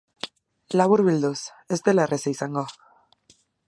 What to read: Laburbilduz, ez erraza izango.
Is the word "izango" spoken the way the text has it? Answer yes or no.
yes